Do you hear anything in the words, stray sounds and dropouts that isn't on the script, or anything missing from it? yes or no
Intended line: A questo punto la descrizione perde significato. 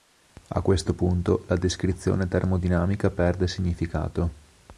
yes